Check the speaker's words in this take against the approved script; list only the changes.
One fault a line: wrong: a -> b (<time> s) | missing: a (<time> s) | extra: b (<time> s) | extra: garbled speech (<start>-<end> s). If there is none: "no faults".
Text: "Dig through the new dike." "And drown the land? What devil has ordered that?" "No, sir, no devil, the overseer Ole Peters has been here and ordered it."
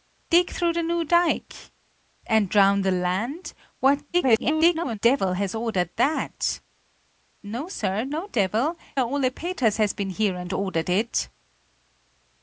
extra: garbled speech (4.1-5.0 s)
missing: the overseer (8.8 s)